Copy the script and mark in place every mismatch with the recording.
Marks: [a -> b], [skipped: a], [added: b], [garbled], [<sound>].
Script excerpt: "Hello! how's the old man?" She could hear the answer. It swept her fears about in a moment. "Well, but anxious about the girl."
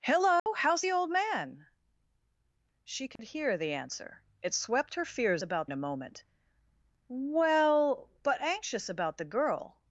"Hello! [dropout] how's the old man?" She could [dropout] hear the answer. It swept her fears about in a moment. "Well, but anxious about the girl."